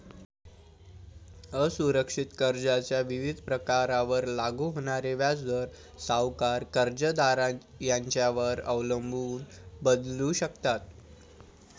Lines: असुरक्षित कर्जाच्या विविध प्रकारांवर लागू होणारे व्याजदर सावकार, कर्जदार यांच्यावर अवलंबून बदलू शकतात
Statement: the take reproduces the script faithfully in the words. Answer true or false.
true